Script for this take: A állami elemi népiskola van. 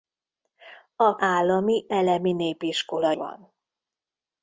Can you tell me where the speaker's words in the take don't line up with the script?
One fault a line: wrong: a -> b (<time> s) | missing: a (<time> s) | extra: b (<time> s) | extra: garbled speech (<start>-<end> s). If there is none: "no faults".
no faults